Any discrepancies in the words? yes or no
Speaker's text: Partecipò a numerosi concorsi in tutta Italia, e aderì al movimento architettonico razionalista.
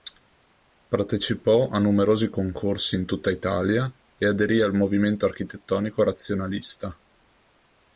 no